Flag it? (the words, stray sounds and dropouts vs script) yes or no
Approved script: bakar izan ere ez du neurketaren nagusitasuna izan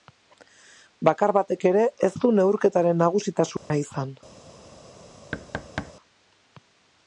yes